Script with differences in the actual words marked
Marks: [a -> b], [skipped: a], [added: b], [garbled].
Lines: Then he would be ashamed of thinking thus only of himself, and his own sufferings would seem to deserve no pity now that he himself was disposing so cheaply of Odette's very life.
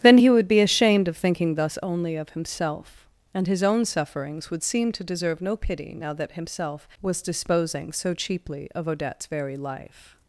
Then he would be ashamed of thinking thus only of himself, and his own sufferings would seem to deserve no pity now that [skipped: he] himself was disposing so cheaply of Odette's very life.